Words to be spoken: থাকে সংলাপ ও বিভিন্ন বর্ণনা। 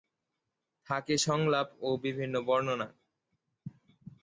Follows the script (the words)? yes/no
yes